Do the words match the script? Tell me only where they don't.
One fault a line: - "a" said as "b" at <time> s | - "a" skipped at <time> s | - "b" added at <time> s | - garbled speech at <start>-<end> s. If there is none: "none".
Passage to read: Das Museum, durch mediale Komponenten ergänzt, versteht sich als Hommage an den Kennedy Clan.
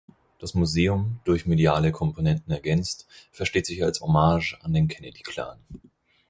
none